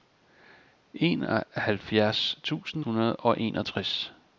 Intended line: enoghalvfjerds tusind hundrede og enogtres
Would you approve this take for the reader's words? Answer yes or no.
yes